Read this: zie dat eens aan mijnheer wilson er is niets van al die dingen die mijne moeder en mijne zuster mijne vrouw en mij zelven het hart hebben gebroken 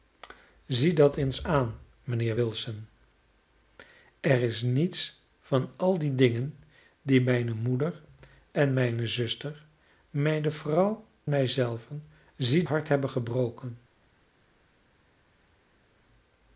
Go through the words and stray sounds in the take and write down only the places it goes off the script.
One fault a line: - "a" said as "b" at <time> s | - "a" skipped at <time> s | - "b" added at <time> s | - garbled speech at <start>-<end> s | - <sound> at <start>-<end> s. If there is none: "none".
- "en" skipped at 11.1 s
- "het" said as "zie" at 12.4 s